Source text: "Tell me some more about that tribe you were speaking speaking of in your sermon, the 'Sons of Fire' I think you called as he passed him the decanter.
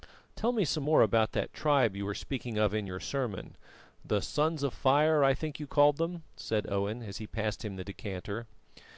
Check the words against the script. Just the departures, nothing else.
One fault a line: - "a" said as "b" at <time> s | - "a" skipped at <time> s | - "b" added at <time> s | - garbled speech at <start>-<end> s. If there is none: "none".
- "speaking" skipped at 2.6 s
- "them said Owen" added at 6.0 s